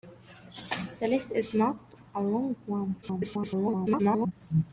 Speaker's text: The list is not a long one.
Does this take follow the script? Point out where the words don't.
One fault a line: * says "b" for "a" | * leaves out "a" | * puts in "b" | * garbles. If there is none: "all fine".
* garbles